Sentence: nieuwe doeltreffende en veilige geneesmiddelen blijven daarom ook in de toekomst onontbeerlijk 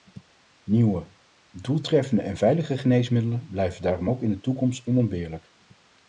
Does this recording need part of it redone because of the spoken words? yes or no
no